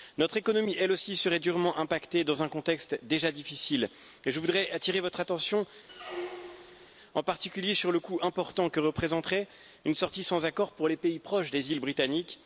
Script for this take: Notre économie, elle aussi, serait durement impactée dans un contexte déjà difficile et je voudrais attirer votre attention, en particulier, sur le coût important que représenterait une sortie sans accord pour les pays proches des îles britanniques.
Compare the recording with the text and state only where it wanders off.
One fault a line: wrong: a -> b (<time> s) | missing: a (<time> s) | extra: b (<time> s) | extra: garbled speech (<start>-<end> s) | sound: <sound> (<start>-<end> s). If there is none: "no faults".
sound: squeak (5.9-6.9 s)